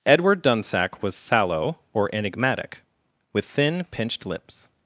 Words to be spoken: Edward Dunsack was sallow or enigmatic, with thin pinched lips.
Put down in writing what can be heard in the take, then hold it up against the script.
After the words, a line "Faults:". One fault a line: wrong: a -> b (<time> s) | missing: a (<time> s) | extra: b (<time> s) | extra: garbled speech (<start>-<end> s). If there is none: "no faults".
Edward Dunsack was sallow or enigmatic, with thin pinched lips.
Faults:
no faults